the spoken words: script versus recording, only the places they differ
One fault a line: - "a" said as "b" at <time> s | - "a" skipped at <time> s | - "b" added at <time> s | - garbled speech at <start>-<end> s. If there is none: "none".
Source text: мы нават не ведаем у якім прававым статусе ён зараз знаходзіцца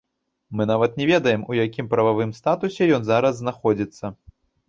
none